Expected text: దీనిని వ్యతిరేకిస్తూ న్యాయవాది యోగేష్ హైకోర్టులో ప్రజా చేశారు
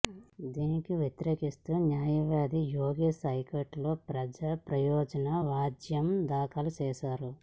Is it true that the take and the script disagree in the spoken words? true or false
true